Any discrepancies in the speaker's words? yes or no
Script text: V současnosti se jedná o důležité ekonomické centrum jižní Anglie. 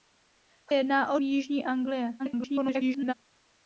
yes